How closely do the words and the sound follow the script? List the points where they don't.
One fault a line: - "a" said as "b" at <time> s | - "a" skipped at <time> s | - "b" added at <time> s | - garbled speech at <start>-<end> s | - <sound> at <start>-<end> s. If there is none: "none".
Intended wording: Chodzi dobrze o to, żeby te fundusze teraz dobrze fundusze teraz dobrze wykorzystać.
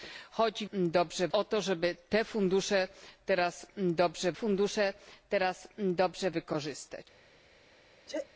- sneeze at 8.1-8.3 s